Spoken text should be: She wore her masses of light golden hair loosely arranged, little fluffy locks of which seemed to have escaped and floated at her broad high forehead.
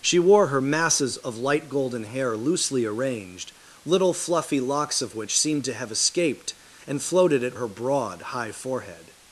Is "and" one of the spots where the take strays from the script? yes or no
no